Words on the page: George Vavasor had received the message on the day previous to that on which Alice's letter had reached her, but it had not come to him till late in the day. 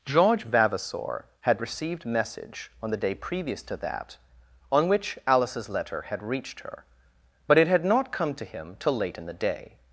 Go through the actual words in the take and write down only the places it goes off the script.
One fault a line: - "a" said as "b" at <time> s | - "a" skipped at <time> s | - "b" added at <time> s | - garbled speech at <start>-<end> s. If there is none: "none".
- "the" skipped at 2.0 s